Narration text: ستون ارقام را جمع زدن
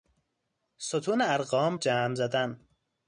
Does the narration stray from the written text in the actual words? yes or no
yes